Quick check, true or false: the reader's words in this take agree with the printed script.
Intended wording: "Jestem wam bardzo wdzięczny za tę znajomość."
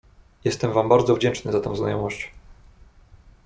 true